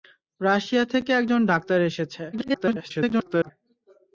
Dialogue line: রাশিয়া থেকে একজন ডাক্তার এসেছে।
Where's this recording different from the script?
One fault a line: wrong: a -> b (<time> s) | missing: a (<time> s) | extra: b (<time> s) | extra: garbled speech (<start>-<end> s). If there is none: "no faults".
extra: garbled speech (2.3-3.5 s)